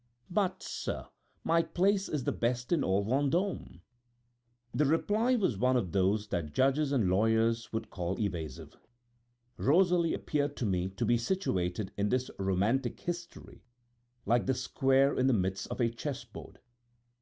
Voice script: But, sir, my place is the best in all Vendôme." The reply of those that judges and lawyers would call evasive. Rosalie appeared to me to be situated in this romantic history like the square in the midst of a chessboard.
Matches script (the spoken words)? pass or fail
fail